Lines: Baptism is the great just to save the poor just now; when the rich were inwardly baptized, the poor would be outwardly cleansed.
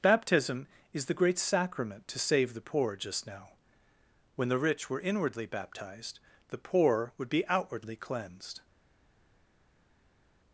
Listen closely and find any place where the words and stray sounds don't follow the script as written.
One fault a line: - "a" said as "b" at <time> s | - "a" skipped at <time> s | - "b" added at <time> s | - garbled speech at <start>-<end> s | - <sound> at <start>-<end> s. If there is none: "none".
- "just" said as "sacrament" at 1.4 s